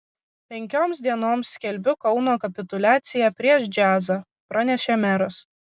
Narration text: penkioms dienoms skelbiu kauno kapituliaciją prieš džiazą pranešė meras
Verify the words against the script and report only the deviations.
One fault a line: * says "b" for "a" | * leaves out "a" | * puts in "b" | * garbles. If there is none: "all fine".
all fine